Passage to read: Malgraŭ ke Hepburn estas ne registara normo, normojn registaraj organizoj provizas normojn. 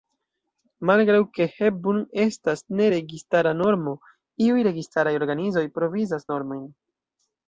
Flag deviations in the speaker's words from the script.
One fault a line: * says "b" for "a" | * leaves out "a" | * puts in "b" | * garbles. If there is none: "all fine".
* says "iuj" for "normojn"